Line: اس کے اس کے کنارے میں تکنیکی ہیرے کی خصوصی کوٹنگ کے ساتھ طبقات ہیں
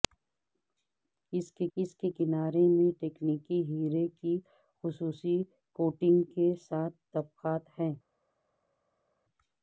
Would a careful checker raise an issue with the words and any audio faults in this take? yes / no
no